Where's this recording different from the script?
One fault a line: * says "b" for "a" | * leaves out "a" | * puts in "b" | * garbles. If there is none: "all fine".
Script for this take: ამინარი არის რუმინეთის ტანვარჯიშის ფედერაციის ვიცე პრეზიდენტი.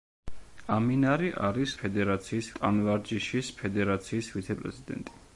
* says "ფედერაციის" for "რუმინეთის"